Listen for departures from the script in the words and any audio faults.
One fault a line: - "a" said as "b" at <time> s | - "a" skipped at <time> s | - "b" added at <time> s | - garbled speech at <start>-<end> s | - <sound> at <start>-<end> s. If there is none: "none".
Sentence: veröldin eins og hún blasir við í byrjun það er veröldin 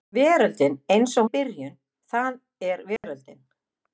- "hún blasir við" skipped at 1.3 s
- dropout at 3.0-3.0 s